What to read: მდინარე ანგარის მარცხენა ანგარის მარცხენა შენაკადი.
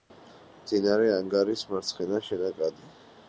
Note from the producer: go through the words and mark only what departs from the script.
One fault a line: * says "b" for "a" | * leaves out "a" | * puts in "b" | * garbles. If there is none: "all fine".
* leaves out "ანგარის მარცხენა"